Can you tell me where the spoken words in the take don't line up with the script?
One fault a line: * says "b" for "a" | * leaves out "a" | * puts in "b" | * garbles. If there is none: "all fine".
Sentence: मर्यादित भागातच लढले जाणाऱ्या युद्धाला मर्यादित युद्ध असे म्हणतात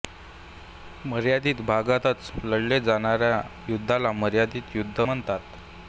* leaves out "असे"